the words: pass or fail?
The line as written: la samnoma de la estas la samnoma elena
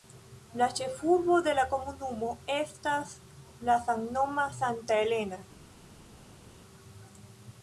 fail